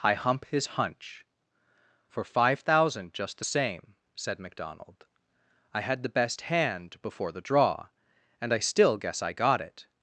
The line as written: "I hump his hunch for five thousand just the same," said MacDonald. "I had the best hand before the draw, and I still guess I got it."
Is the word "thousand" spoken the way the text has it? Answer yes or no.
yes